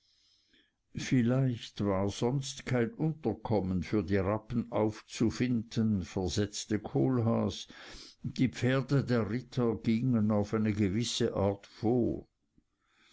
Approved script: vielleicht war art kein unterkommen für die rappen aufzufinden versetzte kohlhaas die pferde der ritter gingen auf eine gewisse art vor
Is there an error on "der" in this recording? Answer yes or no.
no